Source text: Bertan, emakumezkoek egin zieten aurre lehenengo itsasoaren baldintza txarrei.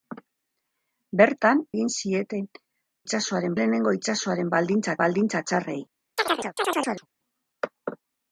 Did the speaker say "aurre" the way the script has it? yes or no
no